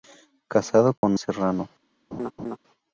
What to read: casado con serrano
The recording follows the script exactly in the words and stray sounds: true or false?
false